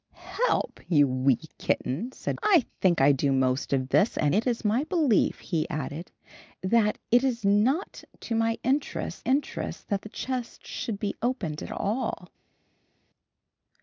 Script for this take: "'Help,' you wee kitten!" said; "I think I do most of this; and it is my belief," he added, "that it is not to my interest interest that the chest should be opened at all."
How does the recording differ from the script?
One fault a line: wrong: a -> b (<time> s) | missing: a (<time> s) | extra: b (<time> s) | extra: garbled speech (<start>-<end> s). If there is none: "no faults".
no faults